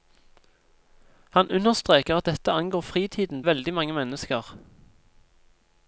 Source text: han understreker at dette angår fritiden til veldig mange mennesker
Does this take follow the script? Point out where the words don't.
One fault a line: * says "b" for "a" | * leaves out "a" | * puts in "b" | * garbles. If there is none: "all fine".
* leaves out "til"